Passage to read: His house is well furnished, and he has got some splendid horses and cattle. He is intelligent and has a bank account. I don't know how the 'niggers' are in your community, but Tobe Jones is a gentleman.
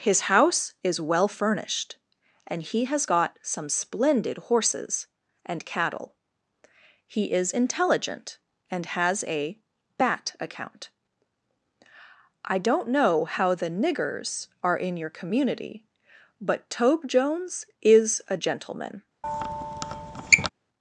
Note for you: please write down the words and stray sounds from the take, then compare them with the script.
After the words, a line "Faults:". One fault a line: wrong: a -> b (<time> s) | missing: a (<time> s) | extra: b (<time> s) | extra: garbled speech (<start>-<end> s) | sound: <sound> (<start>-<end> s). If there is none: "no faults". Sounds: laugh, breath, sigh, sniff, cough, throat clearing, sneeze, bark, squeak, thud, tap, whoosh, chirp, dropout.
His house is well furnished, and he has got some splendid horses and cattle. He is intelligent and has a bat account. I don't know how the 'niggers' are in your community, but Tobe Jones is a gentleman.
Faults:
wrong: bank -> bat (10.0 s)
sound: squeak (19.2-20.5 s)